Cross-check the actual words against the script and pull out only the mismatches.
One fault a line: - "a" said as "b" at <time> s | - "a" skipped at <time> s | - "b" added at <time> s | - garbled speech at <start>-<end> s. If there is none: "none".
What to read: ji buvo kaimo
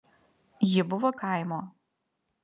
none